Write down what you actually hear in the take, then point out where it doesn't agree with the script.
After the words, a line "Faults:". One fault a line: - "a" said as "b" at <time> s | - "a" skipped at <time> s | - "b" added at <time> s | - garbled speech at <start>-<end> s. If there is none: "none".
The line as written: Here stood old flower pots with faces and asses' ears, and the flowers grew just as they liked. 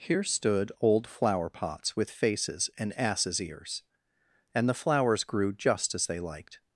Here stood old flower pots with faces and asses' ears, and the flowers grew just as they liked.
Faults:
none